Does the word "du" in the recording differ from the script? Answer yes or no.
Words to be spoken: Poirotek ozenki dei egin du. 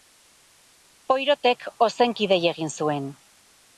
yes